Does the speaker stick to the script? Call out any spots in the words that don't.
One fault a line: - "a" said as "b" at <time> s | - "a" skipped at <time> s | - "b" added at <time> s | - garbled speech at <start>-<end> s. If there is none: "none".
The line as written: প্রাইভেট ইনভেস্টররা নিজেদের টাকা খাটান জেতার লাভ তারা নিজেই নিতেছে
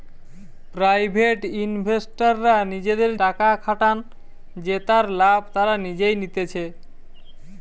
none